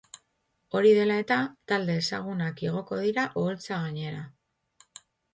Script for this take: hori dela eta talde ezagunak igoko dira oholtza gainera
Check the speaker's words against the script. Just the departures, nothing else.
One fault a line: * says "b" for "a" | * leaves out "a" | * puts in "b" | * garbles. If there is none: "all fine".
all fine